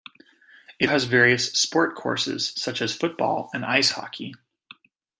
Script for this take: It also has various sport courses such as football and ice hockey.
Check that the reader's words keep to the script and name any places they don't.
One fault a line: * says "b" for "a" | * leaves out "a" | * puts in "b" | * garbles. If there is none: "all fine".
* leaves out "also"